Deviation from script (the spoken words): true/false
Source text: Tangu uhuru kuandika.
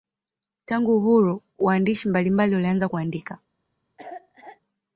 true